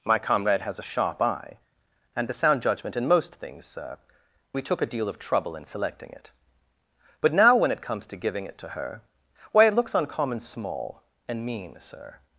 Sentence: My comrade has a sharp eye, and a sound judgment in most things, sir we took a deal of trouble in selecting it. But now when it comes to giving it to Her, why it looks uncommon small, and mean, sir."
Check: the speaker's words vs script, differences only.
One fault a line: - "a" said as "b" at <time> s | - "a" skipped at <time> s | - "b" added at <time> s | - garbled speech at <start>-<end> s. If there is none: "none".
none